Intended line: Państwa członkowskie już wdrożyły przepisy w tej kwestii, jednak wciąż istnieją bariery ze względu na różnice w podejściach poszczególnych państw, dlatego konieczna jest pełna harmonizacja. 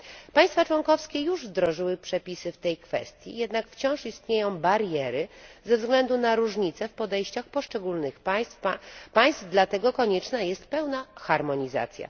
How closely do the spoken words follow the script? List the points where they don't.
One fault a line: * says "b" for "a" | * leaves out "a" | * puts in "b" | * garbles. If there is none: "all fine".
all fine